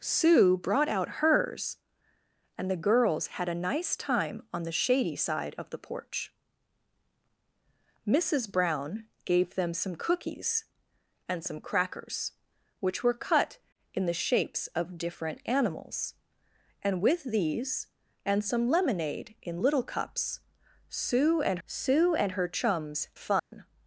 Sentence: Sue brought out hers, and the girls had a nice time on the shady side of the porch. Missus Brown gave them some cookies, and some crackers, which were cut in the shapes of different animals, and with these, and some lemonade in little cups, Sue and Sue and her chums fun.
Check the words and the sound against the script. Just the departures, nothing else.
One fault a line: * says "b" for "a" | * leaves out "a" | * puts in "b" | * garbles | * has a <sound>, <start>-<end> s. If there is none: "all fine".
* has a dropout, 23.4-23.5 s